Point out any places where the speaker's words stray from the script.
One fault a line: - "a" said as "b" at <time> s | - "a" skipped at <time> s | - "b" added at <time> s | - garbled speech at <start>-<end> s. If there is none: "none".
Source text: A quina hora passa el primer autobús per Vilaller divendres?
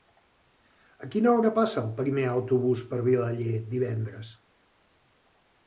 none